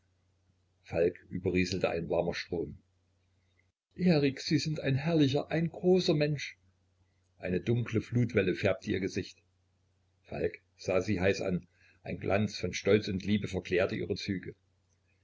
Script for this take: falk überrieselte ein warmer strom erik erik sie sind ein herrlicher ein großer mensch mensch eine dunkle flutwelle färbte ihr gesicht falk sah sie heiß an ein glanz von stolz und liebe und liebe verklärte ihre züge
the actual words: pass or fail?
fail